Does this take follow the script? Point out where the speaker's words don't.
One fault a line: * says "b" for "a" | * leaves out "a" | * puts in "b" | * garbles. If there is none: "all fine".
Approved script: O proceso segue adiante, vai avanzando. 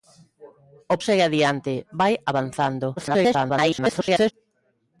* leaves out "proceso"
* garbles